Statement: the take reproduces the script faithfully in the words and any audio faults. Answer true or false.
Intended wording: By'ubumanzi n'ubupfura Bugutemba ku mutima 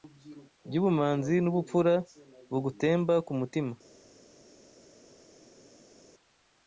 true